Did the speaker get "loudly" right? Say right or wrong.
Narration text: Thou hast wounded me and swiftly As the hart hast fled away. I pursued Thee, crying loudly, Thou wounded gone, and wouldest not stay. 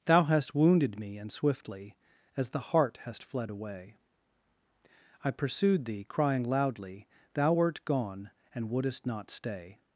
right